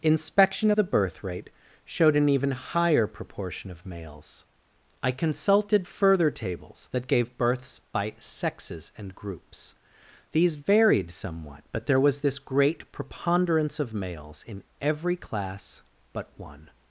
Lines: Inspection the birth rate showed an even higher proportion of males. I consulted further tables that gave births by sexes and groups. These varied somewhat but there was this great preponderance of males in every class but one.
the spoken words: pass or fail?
pass